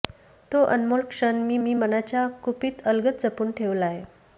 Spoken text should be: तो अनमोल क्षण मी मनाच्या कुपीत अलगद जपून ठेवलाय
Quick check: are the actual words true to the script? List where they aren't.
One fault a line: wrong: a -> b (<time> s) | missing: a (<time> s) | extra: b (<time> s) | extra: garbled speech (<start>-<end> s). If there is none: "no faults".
extra: मी (1.6 s)